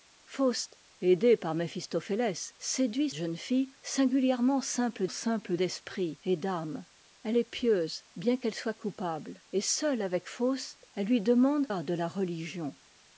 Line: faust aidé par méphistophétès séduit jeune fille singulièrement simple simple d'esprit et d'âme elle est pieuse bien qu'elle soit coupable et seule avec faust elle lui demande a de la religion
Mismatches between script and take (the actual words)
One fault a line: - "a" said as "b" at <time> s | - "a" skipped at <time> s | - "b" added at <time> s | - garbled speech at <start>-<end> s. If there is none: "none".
none